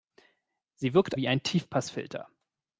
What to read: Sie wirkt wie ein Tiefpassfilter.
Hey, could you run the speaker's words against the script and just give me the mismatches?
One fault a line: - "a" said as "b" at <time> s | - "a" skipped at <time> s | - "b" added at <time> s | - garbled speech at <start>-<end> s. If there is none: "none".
none